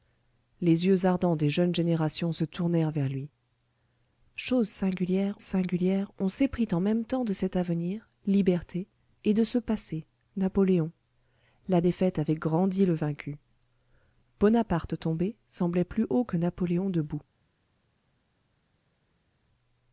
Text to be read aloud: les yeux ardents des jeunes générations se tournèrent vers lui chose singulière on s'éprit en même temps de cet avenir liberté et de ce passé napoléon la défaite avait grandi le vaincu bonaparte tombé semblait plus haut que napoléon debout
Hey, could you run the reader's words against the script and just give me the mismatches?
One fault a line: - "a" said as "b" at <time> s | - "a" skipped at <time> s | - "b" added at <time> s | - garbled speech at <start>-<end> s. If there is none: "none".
- "singulière" added at 5.4 s